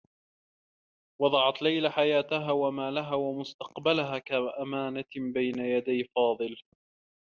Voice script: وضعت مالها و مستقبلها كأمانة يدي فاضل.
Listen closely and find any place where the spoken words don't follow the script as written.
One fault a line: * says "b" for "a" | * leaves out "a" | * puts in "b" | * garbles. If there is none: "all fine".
* puts in "ليلى حياتها و"
* puts in "بين"